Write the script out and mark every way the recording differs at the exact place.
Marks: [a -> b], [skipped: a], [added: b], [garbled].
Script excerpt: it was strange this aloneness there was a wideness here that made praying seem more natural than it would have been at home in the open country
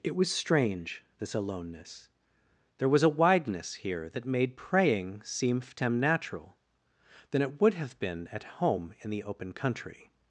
it was strange this aloneness there was a wideness here that made praying seem [more -> ftem] natural than it would have been at home in the open country